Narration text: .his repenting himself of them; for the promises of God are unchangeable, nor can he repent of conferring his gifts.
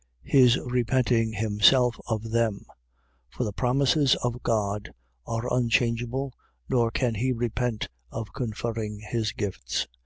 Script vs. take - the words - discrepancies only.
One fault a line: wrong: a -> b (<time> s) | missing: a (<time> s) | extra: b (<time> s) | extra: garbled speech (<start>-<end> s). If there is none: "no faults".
no faults